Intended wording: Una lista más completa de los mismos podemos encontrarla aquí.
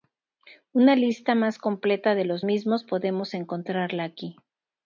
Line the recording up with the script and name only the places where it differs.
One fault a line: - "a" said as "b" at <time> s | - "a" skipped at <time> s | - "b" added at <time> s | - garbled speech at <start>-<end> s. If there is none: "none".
none